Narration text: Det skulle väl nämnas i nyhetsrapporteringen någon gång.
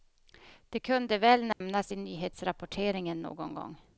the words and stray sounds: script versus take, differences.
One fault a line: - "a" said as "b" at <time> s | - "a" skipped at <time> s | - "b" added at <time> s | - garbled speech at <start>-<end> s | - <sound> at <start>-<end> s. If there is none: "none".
- "skulle" said as "kunde" at 0.8 s
- dropout at 1.5-1.6 s